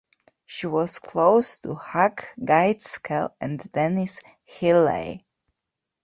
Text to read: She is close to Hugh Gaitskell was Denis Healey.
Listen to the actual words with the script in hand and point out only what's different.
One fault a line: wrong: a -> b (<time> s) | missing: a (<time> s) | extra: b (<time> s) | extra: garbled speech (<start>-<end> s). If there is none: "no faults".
wrong: is -> was (0.7 s)
wrong: was -> and (3.4 s)